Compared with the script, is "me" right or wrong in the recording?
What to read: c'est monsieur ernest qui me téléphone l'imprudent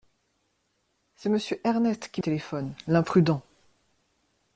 wrong